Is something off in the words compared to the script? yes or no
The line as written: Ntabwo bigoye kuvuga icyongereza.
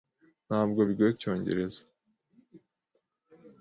yes